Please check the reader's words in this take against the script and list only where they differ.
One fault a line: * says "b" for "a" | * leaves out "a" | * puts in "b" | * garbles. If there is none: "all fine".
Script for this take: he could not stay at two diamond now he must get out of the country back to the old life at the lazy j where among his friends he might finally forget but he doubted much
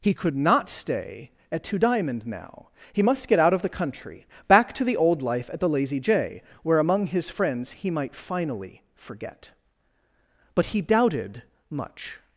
all fine